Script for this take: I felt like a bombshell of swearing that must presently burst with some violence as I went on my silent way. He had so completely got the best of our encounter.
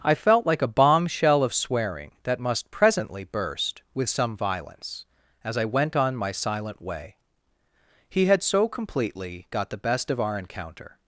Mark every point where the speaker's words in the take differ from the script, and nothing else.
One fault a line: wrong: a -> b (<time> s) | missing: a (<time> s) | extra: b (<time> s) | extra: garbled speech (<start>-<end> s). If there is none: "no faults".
no faults